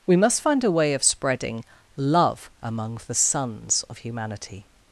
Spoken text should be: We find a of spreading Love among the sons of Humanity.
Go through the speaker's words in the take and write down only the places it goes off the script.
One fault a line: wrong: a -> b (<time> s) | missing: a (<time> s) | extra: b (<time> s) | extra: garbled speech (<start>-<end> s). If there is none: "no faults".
extra: must (0.1 s)
extra: way (0.7 s)